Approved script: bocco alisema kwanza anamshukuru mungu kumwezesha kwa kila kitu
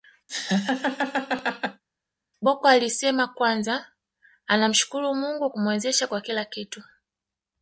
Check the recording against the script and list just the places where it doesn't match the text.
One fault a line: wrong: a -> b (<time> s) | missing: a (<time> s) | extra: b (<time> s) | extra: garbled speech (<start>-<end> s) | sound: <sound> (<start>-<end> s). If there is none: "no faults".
sound: laugh (0.3-1.8 s)